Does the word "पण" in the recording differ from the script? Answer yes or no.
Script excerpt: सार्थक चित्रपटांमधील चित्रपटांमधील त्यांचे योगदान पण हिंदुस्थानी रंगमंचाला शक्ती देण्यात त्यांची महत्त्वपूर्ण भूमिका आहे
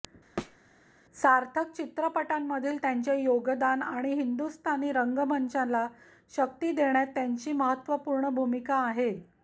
yes